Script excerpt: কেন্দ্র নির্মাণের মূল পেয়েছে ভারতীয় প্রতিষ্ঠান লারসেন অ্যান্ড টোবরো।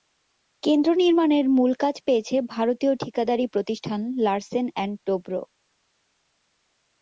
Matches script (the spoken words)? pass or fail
fail